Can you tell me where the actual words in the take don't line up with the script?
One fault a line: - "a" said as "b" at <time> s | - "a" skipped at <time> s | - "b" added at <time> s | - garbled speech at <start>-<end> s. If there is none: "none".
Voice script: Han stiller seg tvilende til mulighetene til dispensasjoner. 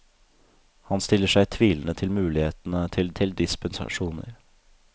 - "til" added at 3.2 s